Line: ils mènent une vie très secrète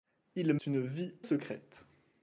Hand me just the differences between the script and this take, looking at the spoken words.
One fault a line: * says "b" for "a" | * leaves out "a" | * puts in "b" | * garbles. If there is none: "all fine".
* leaves out "mènent"
* leaves out "très"